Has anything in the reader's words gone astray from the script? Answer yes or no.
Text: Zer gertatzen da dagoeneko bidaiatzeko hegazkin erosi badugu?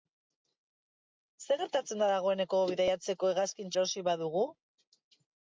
no